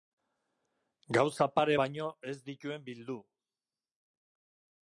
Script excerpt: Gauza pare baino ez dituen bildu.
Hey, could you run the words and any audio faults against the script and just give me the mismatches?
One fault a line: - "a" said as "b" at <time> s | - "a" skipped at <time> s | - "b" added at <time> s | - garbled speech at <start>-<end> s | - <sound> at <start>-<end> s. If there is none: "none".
none